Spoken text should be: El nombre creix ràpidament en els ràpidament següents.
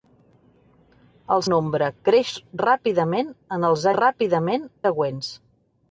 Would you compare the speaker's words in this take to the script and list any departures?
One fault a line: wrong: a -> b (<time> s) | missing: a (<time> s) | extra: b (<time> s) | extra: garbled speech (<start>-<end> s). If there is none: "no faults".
no faults